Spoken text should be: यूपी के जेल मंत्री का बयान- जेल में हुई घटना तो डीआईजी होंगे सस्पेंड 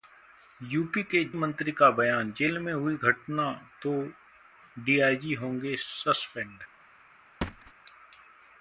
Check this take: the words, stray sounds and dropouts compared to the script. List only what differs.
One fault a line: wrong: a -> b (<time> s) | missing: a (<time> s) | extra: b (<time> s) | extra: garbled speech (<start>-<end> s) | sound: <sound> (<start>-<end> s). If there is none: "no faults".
missing: जेल (1.2 s)
sound: thud (7.4-7.7 s)